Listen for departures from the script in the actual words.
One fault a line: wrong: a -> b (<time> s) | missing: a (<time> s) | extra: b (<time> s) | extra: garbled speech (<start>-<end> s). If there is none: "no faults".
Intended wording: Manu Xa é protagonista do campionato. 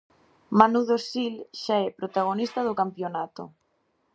extra: Dosil (0.9 s)